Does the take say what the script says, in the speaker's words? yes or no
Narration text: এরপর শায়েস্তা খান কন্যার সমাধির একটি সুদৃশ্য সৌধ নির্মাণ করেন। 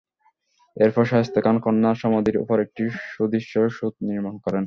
no